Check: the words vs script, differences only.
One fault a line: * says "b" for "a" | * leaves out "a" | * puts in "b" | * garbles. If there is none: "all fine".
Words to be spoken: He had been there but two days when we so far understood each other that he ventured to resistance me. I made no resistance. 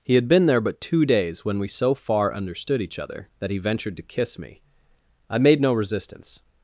* says "kiss" for "resistance"